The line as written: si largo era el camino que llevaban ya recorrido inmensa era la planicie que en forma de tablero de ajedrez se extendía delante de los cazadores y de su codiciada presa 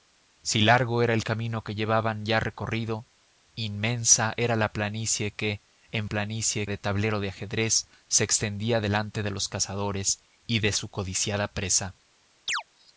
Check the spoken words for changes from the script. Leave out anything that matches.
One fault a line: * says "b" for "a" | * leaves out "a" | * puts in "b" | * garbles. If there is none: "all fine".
* says "planicie" for "forma"